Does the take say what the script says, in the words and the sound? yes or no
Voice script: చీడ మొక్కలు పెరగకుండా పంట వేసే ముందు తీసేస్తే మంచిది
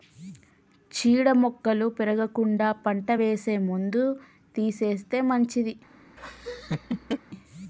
no